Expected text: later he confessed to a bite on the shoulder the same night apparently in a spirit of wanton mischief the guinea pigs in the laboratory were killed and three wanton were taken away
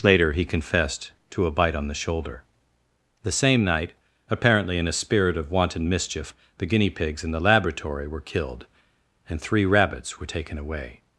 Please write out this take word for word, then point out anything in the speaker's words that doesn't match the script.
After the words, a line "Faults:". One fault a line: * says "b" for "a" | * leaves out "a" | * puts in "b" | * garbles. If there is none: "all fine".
later he confessed to a bite on the shoulder the same night apparently in a spirit of wanton mischief the guinea pigs in the laboratory were killed and three rabbits were taken away
Faults:
* says "rabbits" for "wanton"